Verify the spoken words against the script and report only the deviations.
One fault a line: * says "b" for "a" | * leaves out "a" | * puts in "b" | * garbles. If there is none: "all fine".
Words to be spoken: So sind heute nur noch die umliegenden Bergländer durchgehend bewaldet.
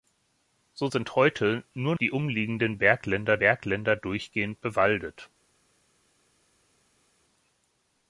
* leaves out "noch"
* puts in "Bergländer"